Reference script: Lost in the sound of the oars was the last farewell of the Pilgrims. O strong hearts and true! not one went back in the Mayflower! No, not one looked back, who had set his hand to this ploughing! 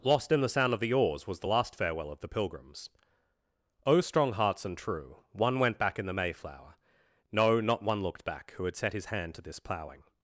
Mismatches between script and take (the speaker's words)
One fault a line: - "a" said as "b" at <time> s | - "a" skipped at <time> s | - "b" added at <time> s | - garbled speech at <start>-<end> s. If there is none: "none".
- "not" skipped at 5.2 s